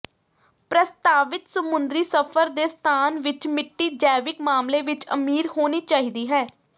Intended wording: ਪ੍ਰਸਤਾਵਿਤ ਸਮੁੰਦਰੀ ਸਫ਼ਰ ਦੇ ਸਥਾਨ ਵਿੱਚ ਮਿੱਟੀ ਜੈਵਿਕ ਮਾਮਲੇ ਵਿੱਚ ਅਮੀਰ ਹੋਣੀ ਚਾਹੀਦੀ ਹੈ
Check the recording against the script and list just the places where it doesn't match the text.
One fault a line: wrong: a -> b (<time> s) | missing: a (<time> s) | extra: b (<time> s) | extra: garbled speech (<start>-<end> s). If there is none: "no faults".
no faults